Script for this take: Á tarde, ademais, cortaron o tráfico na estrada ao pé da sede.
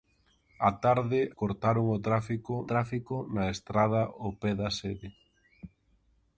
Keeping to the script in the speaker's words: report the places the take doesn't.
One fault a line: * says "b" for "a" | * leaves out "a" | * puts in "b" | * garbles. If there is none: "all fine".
* leaves out "ademais"
* puts in "tráfico"